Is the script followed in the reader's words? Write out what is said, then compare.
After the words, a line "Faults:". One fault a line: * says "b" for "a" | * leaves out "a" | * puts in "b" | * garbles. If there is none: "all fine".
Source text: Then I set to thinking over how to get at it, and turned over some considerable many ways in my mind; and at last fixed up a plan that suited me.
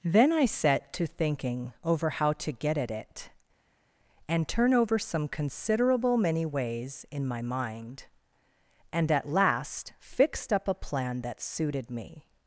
Then I set to thinking over how to get at it, and turn over some considerable many ways in my mind; and at last fixed up a plan that suited me.
Faults:
* says "turn" for "turned"